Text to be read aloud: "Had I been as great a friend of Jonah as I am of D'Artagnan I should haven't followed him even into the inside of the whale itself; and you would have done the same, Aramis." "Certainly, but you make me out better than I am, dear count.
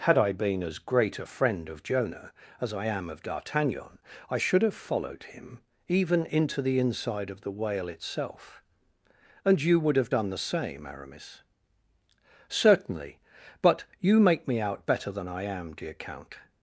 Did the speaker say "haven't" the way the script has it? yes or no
no